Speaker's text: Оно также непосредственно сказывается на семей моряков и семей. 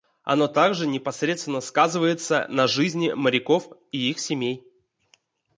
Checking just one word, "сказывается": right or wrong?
right